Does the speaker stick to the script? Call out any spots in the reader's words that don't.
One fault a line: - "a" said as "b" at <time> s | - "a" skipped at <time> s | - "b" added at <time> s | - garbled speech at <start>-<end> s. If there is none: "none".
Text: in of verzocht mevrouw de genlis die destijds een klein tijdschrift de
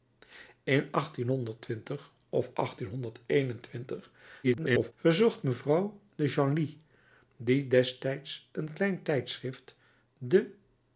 - garbled speech at 4.4-4.9 s